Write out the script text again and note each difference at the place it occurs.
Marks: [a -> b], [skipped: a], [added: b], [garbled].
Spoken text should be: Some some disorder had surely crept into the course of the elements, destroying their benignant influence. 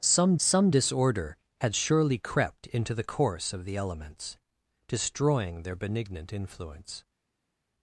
Some some disorder had surely crept into the course of the elements, destroying their benignant influence.